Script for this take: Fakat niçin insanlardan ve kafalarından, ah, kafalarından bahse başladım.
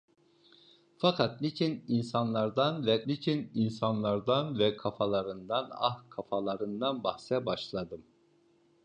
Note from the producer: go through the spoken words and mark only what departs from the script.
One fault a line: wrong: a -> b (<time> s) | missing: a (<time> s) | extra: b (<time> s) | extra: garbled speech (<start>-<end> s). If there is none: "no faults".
extra: niçin insanlardan ve (3.1 s)